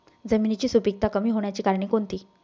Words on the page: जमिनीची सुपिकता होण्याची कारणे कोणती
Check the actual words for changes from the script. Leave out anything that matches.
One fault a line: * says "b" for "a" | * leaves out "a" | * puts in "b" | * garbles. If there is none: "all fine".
* puts in "कमी"